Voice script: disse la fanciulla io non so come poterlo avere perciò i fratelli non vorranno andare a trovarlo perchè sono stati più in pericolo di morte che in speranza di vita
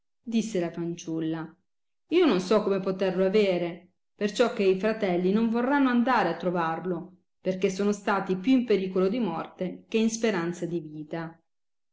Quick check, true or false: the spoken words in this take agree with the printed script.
false